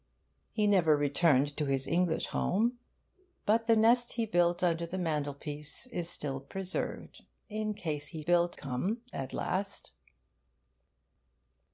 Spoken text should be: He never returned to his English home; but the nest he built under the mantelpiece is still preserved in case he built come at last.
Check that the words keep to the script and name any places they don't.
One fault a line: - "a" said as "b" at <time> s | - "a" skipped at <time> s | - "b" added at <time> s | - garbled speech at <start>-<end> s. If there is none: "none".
none